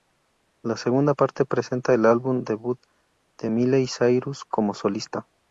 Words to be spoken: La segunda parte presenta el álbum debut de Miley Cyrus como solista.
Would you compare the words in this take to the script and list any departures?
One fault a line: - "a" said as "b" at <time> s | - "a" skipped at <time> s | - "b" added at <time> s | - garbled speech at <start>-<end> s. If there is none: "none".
none